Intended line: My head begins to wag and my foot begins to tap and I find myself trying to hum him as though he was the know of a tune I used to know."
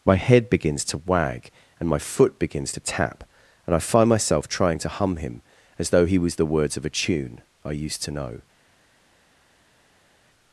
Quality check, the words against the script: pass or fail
fail